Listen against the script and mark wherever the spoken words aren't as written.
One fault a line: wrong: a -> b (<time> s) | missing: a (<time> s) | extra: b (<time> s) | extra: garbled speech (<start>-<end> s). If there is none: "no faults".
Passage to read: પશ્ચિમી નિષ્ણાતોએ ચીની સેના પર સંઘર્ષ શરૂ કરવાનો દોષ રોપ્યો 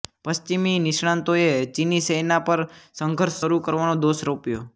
no faults